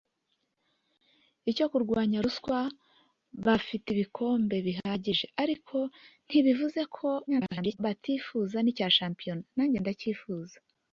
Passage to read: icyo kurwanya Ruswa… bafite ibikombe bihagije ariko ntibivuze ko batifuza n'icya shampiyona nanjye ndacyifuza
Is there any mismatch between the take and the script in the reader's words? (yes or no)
yes